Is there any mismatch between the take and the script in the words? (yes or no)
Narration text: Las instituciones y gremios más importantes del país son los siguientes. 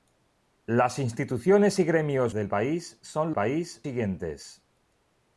yes